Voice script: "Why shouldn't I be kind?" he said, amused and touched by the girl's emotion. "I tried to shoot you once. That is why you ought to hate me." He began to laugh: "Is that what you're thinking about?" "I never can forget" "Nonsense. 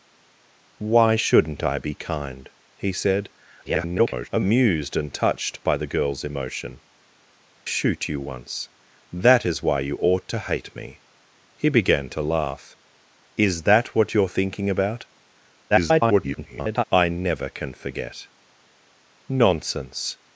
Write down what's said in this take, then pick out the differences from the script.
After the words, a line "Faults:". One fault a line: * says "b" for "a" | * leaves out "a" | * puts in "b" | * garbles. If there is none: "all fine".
"Why shouldn't I be kind?" he said, [garbled] amused and touched by the girl's emotion. "shoot you once. That is why you ought to hate me." He began to laugh: "Is that what you're thinking about?" [garbled] "I never can forget" "Nonsense.
Faults:
* garbles
* leaves out "I tried to"
* garbles